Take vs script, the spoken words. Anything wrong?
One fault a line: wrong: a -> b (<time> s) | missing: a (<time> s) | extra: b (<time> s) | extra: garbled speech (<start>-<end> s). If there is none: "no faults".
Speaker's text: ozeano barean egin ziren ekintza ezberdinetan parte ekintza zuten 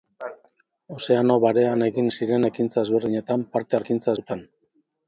no faults